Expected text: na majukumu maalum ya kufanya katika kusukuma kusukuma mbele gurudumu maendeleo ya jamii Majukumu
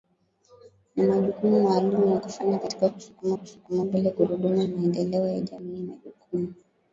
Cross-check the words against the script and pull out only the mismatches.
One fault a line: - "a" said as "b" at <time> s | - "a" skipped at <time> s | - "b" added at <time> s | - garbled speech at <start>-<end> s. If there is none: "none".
none